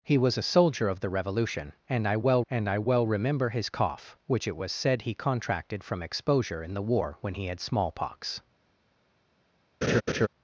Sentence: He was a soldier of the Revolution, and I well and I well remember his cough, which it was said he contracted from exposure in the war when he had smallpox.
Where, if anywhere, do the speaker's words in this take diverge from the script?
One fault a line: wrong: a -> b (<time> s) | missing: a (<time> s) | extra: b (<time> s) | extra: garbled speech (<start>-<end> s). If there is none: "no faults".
no faults